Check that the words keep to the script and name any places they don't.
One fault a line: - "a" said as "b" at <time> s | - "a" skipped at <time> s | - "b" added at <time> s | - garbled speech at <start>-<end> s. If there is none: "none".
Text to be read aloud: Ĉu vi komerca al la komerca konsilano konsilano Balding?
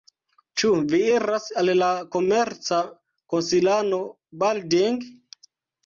- "komerca" said as "iras" at 1.2 s
- "konsilano" skipped at 4.0 s